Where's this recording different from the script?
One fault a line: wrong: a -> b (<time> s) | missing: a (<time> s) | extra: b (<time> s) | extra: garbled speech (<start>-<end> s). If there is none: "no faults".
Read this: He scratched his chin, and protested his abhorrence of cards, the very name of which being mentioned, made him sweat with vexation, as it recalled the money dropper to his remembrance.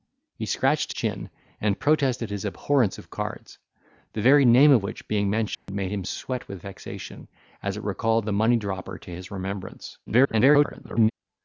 missing: his (0.9 s)
extra: garbled speech (10.1-11.1 s)